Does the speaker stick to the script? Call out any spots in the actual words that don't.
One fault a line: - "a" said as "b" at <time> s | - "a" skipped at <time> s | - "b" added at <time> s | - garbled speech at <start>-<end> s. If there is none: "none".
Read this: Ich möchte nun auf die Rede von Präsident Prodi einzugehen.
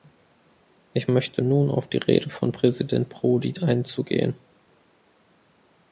none